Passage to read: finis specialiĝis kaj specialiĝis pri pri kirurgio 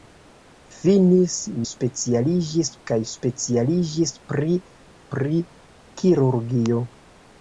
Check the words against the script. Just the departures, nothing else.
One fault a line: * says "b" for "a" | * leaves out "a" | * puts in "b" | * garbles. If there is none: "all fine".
all fine